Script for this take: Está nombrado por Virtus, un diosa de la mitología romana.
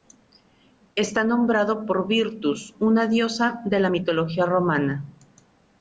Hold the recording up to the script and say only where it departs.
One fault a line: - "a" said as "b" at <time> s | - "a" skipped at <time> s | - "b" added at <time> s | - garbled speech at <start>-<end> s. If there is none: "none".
- "un" said as "una" at 2.8 s